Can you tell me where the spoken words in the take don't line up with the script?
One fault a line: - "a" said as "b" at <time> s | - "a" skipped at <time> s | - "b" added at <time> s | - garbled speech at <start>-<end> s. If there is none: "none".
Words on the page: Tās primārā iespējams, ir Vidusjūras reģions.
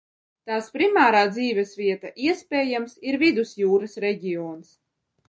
- "dzīvesvieta" added at 1.4 s